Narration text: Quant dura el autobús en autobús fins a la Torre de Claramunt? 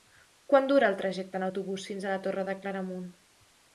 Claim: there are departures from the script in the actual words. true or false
true